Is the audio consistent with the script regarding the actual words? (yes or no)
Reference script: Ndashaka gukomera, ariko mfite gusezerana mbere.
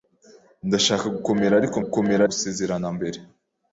no